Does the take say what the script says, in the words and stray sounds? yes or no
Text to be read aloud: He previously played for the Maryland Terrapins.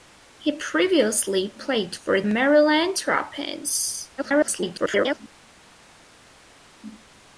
no